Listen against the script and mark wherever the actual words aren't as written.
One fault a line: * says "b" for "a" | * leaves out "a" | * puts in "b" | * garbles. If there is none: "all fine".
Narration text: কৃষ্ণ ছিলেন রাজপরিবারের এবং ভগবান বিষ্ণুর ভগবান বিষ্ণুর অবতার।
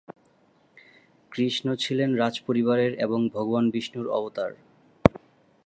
* leaves out "ভগবান বিষ্ণুর"